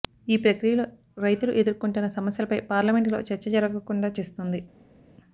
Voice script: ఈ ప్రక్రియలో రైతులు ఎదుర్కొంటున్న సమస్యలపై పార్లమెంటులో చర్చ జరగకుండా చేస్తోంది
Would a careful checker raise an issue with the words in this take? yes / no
no